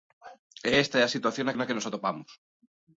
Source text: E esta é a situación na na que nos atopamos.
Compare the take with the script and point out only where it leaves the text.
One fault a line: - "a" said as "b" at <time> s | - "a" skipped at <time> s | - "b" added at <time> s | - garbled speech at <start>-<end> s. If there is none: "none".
none